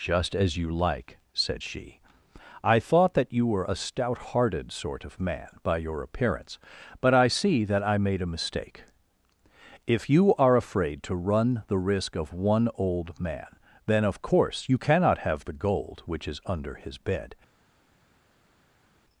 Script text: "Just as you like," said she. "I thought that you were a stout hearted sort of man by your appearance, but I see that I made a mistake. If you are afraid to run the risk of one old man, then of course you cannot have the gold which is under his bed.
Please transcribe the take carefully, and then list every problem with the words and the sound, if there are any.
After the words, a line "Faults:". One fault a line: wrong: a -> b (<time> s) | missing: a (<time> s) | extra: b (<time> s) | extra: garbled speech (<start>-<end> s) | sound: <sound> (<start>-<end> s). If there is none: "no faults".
"Just as you like," said she. "I thought that you were a stout hearted sort of man by your appearance, but I see that I made a mistake. If you are afraid to run the risk of one old man, then of course you cannot have the gold which is under his bed.
Faults:
no faults